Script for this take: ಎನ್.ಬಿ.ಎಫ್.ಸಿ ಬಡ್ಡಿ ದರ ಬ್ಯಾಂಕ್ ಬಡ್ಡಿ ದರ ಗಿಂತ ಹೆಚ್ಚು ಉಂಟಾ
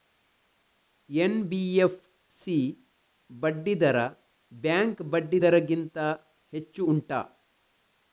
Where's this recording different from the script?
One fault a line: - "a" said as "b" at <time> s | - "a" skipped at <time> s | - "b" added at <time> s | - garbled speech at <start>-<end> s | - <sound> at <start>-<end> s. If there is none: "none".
none